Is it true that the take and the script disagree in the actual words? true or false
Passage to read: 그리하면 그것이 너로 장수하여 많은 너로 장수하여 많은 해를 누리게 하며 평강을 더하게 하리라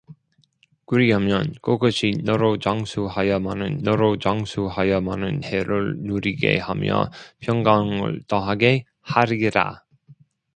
false